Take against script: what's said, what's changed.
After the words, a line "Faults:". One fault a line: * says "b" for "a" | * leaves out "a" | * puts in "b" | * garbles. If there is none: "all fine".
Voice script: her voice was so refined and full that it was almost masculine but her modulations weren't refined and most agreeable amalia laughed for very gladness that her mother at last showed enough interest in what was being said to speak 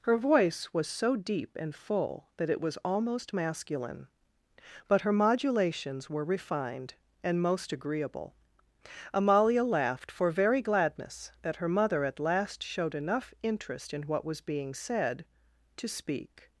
her voice was so deep and full that it was almost masculine but her modulations were refined and most agreeable amalia laughed for very gladness that her mother at last showed enough interest in what was being said to speak
Faults:
* says "deep" for "refined"
* says "were" for "weren't"